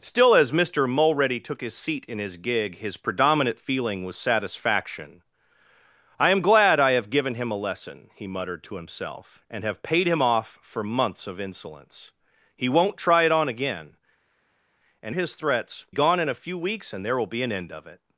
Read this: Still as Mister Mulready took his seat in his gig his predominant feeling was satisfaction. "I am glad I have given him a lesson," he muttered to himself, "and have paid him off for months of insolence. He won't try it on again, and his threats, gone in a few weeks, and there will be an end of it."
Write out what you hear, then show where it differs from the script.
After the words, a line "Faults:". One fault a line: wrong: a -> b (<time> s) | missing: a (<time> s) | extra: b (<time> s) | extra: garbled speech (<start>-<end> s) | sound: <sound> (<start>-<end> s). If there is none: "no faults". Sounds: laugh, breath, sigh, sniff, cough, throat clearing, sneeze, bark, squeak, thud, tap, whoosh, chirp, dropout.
Still as Mister Mulready took his seat in his gig his predominant feeling was satisfaction. "I am glad I have given him a lesson," he muttered to himself, "and have paid him off for months of insolence. He won't try it on again, and his threats, gone in a few weeks, and there will be an end of it."
Faults:
no faults